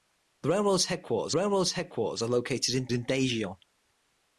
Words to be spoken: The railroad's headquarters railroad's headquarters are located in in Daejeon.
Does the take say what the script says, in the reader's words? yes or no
yes